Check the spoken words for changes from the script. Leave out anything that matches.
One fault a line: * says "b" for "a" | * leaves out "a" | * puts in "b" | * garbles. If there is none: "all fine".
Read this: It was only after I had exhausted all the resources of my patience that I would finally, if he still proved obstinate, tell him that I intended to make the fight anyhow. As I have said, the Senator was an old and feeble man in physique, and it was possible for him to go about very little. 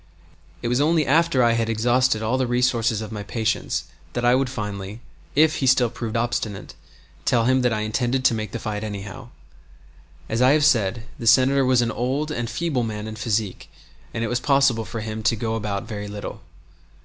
all fine